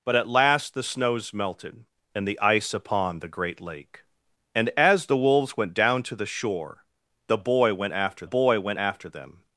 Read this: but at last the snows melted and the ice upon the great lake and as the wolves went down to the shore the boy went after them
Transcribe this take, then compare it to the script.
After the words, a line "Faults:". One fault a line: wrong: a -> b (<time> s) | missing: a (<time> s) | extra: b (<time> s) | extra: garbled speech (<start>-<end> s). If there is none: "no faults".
but at last the snows melted and the ice upon the great lake and as the wolves went down to the shore the boy went after boy went after them
Faults:
extra: boy went after (8.2 s)